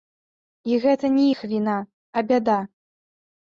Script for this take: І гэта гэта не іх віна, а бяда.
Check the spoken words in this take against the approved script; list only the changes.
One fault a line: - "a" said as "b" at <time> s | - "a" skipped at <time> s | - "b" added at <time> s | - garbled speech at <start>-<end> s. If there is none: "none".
- "гэта" skipped at 1.1 s